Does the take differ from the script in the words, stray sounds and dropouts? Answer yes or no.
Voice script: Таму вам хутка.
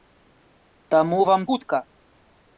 no